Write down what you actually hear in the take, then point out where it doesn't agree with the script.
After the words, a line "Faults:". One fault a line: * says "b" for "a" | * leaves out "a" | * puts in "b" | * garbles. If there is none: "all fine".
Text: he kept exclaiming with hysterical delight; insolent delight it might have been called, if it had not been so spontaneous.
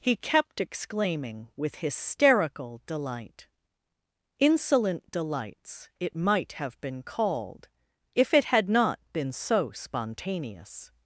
he kept exclaiming with hysterical delight; insolent delights it might have been called, if it had not been so spontaneous.
Faults:
* says "delights" for "delight"